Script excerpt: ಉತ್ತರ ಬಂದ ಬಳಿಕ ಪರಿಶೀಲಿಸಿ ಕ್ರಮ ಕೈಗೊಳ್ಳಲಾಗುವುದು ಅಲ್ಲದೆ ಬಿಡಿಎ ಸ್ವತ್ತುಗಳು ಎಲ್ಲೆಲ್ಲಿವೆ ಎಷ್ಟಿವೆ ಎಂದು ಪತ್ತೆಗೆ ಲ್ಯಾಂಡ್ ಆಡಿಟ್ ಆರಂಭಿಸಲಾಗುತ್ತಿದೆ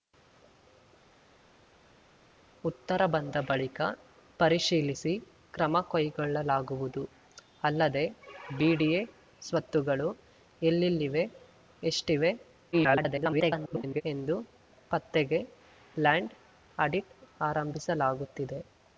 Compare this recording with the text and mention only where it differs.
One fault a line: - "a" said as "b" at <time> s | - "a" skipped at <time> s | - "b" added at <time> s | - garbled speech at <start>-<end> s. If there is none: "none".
- garbled speech at 12.7-14.0 s